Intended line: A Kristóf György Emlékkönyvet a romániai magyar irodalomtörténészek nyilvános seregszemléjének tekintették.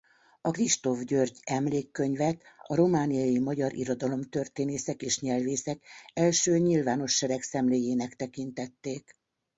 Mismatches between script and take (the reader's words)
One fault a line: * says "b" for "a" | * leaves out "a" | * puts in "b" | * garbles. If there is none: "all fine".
* puts in "és nyelvészek első"